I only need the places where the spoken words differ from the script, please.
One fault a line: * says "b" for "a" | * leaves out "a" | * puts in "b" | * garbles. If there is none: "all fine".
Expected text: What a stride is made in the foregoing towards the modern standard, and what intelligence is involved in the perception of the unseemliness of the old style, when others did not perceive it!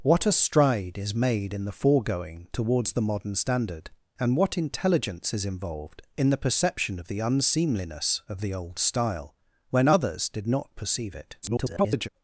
* garbles